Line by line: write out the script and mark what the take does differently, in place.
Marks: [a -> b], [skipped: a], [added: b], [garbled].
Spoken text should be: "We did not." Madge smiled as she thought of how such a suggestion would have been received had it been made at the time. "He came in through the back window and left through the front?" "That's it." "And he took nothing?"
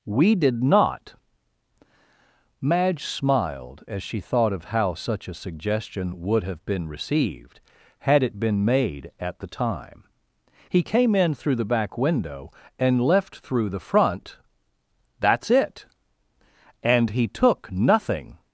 "We did not." Madge smiled as she thought of how such a suggestion would have been received had it been made at the time. "He came in through the back window and left through the front?" "That's it." "And he took nothing?"